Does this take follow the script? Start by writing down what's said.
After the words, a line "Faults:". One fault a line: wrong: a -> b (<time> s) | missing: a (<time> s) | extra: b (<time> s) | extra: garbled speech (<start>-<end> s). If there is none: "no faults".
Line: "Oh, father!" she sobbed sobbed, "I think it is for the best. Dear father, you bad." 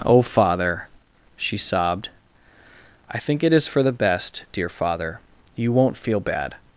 "Oh, father!" she sobbed, "I think it is for the best. Dear father, you won't feel bad."
Faults:
missing: sobbed (2.1 s)
extra: won't feel (5.7 s)